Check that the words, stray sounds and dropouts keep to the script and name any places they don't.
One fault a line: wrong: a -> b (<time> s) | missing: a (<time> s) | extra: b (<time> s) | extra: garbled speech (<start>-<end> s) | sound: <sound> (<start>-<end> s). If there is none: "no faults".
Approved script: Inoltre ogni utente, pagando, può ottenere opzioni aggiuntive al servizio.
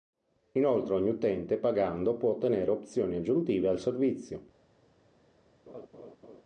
sound: laugh (5.7-6.4 s)